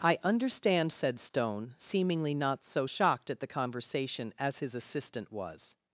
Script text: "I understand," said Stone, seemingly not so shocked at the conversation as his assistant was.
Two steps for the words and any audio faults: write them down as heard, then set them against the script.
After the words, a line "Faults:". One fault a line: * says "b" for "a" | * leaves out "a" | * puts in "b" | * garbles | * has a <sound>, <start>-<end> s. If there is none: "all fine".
"I understand," said Stone, seemingly not so shocked at the conversation as his assistant was.
Faults:
all fine